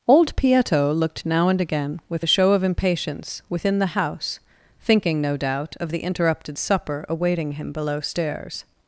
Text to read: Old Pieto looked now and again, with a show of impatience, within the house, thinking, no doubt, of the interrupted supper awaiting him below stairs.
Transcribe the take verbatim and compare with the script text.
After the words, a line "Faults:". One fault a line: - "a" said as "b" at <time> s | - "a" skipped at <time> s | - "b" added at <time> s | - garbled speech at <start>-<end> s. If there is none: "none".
Old Pieto looked now and again, with a show of impatience, within the house, thinking, no doubt, of the interrupted supper awaiting him below stairs.
Faults:
none